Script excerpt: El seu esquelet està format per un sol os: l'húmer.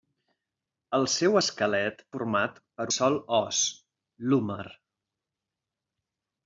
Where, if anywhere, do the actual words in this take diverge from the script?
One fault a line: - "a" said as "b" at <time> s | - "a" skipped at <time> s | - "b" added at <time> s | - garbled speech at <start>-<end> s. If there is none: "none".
- "està" skipped at 2.0 s
- "un" skipped at 2.9 s